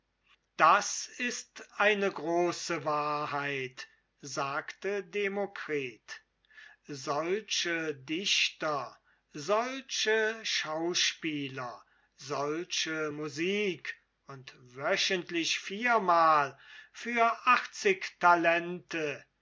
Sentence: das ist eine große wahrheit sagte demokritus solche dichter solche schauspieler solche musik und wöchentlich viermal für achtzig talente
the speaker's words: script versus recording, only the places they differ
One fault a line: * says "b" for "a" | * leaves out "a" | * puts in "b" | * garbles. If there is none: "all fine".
all fine